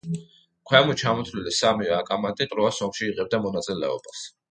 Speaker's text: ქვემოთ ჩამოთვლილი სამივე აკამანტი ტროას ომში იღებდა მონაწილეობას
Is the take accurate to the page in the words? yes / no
yes